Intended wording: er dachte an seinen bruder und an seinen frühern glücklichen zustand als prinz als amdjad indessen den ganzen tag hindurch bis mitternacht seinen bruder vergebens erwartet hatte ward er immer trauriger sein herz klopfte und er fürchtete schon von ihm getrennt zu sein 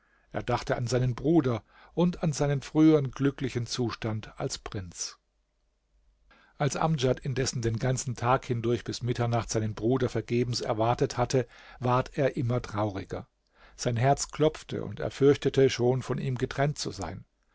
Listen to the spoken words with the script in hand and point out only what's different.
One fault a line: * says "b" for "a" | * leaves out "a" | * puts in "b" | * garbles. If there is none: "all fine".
all fine